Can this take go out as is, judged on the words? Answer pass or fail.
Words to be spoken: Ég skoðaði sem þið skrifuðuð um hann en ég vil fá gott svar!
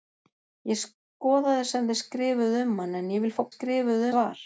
fail